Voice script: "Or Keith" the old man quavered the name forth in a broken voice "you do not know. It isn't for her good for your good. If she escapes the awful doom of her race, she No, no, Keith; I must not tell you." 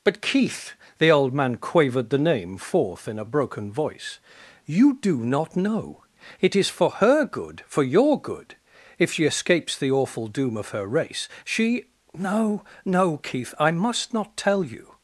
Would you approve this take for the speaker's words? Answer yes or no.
no